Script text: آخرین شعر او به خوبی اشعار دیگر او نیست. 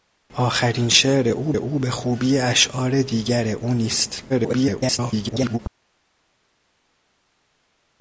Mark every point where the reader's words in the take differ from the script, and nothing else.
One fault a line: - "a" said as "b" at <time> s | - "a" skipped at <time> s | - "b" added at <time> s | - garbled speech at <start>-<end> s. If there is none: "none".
- "او" added at 1.5 s
- garbled speech at 4.3-5.6 s